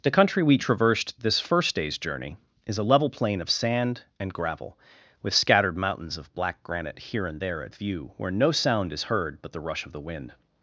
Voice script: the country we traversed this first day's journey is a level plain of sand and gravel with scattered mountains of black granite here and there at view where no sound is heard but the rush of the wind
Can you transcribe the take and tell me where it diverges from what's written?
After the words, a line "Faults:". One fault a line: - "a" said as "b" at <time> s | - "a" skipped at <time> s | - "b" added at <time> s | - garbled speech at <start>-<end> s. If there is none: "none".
the country we traversed this first day's journey is a level plain of sand and gravel with scattered mountains of black granite here and there at view where no sound is heard but the rush of the wind
Faults:
none